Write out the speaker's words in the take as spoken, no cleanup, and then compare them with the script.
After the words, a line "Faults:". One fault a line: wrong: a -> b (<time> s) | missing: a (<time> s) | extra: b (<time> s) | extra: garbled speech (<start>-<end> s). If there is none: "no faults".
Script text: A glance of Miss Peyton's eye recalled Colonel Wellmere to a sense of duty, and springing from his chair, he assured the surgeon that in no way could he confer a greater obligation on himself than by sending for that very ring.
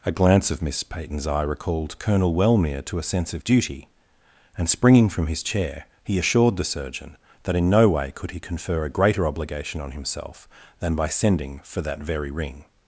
A glance of Miss Peyton's eye recalled Colonel Wellmere to a sense of duty, and springing from his chair, he assured the surgeon that in no way could he confer a greater obligation on himself than by sending for that very ring.
Faults:
no faults